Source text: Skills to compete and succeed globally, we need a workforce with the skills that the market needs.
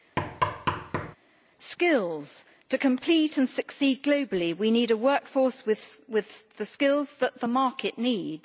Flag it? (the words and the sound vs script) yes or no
yes